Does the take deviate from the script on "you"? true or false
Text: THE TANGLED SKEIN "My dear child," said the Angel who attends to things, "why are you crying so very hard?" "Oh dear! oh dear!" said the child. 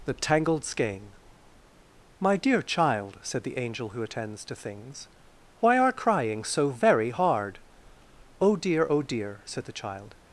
true